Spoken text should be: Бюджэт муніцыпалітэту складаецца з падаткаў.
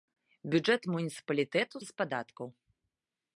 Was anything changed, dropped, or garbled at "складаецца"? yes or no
yes